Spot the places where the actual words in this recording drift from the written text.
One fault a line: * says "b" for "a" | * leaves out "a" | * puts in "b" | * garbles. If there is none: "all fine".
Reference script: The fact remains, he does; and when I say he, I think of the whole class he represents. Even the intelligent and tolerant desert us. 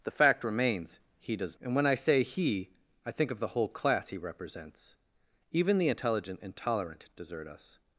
all fine